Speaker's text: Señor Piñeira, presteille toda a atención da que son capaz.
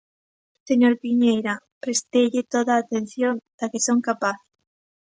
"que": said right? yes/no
yes